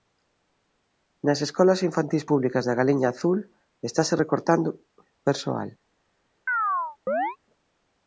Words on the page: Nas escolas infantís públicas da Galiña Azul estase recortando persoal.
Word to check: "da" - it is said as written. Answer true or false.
true